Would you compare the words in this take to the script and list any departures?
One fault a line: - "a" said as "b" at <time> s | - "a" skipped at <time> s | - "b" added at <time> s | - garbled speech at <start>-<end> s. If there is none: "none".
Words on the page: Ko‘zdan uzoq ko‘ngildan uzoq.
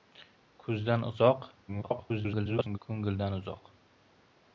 - garbled speech at 1.7-2.8 s